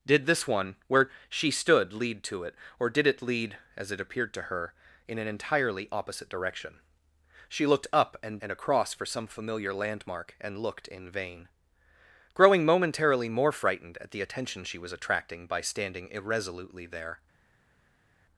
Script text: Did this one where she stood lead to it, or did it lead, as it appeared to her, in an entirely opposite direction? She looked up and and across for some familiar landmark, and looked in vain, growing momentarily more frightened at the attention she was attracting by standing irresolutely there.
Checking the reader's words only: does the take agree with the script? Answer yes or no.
yes